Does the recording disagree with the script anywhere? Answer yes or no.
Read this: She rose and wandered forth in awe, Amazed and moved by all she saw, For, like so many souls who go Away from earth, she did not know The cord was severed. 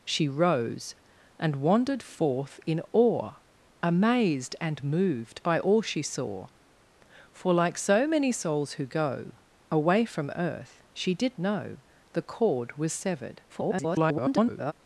yes